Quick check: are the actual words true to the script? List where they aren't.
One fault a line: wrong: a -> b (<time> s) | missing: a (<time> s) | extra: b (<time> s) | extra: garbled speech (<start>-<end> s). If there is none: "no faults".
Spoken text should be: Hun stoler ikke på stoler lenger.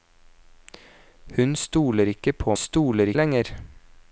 no faults